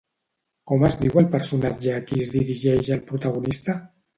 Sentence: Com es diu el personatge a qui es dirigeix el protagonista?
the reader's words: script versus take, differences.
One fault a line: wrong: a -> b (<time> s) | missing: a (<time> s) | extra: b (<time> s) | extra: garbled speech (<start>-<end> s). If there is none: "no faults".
no faults